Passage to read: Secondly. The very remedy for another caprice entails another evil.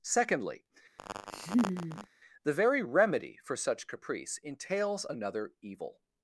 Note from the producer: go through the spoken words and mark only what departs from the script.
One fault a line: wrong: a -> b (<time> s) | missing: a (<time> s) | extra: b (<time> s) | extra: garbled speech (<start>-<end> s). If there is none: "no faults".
wrong: another -> such (3.5 s)